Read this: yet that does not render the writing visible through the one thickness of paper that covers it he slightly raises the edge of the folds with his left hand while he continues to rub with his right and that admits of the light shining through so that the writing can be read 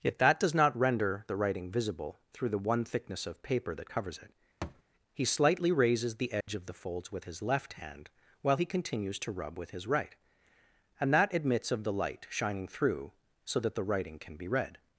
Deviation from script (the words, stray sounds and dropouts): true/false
true